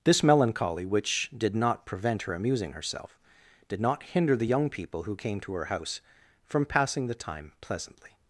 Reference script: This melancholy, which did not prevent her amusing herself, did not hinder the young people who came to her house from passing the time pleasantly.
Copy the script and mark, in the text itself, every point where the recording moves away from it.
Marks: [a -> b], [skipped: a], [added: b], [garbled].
This melancholy, which did not prevent her amusing herself, did not hinder the young people who came to her house from passing the time pleasantly.